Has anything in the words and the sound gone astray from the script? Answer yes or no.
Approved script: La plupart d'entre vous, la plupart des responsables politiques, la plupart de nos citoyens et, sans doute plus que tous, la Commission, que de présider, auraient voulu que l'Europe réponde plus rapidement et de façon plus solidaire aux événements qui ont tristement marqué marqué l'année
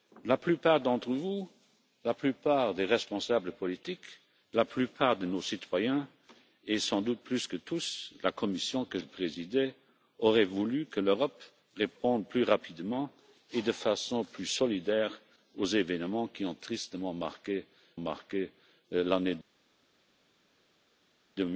no